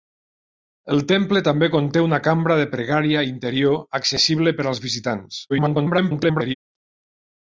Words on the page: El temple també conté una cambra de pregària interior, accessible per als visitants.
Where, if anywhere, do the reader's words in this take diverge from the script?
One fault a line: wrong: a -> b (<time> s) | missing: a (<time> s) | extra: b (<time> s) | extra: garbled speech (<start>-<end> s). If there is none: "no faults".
extra: garbled speech (5.5-6.5 s)